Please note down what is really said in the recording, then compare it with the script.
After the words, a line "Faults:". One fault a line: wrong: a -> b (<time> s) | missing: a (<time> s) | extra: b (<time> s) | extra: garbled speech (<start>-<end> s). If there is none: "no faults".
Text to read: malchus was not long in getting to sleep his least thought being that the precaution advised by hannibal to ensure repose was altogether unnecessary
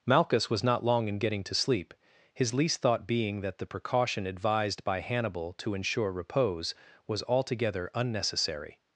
malchus was not long in getting to sleep his least thought being that the precaution advised by hannibal to ensure repose was altogether unnecessary
Faults:
no faults